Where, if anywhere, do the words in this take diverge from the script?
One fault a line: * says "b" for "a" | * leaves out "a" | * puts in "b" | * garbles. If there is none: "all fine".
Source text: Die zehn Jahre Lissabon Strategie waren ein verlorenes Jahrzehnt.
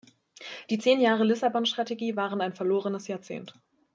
all fine